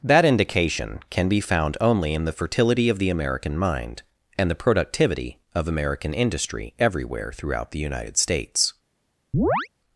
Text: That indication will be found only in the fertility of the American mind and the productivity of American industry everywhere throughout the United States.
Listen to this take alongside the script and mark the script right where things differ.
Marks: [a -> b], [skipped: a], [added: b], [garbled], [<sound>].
That indication [will -> can] be found only in the fertility of the American mind and the productivity of American industry everywhere throughout the United States. [chirp]